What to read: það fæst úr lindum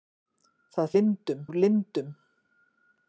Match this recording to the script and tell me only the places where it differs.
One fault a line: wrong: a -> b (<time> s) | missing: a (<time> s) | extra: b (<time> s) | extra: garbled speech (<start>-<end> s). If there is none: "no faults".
wrong: fæst -> lindum (1.0 s)